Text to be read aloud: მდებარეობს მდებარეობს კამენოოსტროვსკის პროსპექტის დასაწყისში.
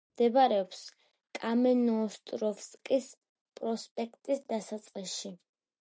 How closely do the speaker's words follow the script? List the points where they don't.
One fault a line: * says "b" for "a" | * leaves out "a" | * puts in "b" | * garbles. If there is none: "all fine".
* leaves out "მდებარეობს"